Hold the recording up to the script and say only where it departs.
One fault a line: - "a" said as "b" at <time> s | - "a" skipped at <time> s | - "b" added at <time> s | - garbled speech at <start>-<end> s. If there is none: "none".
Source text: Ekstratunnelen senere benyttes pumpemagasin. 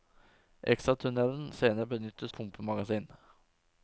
none